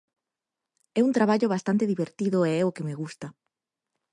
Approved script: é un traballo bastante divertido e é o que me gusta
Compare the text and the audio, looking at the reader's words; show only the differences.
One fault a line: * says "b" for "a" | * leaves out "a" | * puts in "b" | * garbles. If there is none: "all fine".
all fine